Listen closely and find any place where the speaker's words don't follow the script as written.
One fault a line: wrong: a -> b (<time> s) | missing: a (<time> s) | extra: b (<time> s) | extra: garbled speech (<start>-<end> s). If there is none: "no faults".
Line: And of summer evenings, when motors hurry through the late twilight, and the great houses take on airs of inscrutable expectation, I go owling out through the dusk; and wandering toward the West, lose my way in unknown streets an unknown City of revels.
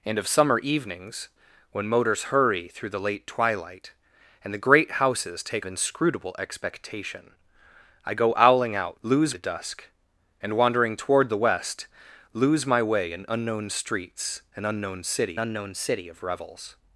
missing: on airs of (5.7 s)
wrong: through -> lose (9.0 s)
extra: unknown City (15.4 s)